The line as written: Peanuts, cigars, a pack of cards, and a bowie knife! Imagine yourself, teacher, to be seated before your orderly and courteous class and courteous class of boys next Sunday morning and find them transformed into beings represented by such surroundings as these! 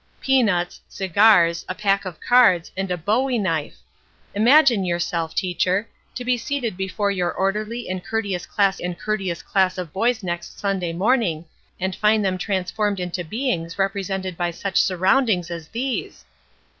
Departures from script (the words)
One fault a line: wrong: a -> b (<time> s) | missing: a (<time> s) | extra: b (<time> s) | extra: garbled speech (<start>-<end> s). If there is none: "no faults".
no faults